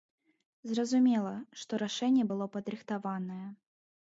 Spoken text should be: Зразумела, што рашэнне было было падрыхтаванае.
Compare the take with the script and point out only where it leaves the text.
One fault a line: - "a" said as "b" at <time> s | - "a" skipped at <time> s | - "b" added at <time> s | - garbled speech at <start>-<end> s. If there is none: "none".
- "было" skipped at 2.5 s